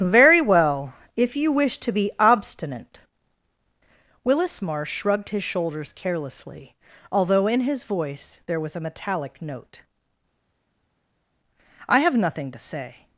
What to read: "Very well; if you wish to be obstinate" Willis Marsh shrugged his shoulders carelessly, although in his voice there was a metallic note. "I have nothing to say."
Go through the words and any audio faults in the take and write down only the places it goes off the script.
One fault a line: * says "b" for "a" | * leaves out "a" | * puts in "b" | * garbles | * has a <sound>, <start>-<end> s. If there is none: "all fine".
all fine